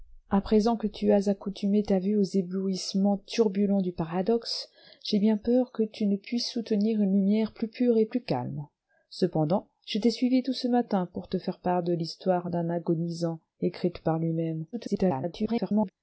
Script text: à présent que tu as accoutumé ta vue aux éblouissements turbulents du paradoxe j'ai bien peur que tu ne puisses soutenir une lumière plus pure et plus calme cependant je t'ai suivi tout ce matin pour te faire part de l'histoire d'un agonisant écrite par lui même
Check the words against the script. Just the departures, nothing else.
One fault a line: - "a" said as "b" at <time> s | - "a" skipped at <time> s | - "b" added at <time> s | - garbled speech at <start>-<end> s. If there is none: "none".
- garbled speech at 14.7-15.9 s